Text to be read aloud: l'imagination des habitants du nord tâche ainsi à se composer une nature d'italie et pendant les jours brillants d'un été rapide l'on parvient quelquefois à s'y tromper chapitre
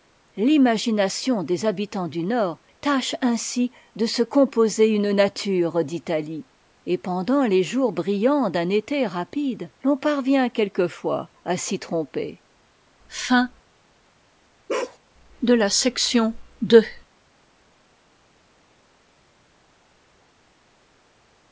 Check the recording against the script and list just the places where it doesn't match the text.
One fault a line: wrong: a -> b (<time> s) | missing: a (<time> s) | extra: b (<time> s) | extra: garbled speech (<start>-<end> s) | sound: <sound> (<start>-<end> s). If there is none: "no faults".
wrong: à -> de (4.0 s)
sound: bark (14.7-15.0 s)